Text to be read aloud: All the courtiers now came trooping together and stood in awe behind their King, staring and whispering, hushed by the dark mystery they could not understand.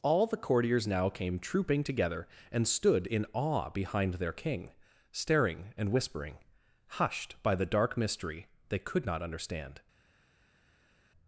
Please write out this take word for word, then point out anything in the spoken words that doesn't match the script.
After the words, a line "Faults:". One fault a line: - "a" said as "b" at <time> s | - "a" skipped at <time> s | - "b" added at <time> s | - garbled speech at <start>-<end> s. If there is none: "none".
All the courtiers now came trooping together and stood in awe behind their King, staring and whispering, hushed by the dark mystery they could not understand.
Faults:
none